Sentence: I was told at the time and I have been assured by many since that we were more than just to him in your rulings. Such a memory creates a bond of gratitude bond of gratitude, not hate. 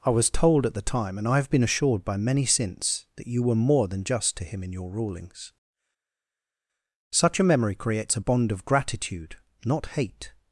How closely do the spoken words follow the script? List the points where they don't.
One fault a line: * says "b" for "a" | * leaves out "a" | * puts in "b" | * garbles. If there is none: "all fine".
* says "you" for "we"
* leaves out "bond of gratitude"